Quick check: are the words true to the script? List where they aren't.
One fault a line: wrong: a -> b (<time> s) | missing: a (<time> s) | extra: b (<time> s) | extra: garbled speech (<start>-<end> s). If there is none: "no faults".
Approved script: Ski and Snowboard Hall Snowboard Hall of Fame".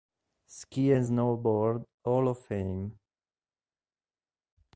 missing: Snowboard Hall (2.3 s)